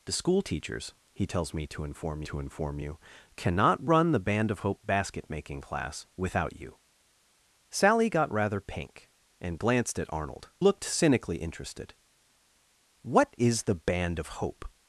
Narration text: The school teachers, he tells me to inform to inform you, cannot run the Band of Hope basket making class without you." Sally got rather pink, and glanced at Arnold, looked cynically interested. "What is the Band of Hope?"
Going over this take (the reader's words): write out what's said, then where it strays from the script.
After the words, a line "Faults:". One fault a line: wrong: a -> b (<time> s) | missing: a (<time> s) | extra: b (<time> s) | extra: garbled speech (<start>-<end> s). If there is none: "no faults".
The school teachers, he tells me to inform to inform you, cannot run the Band of Hope basket making class without you." Sally got rather pink, and glanced at Arnold, looked cynically interested. "What is the Band of Hope?"
Faults:
no faults